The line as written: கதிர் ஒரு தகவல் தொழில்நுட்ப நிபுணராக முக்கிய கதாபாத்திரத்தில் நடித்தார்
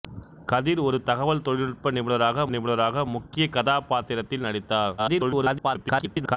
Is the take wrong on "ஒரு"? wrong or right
right